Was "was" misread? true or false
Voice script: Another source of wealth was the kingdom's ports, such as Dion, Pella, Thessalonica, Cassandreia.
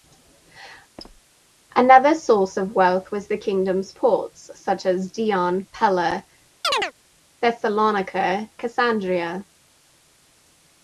false